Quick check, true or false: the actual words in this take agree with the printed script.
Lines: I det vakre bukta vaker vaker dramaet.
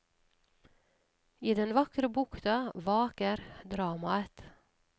false